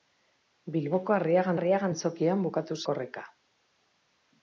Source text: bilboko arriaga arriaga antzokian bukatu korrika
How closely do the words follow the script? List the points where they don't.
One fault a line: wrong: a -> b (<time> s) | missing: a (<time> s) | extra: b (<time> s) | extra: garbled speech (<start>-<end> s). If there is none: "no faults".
no faults